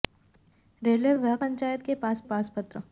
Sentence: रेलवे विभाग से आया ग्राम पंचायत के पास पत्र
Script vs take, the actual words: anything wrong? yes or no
yes